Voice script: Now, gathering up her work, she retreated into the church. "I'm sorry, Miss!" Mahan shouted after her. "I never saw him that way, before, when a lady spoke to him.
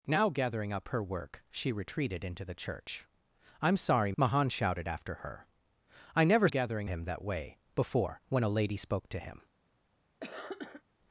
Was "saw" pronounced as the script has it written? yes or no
no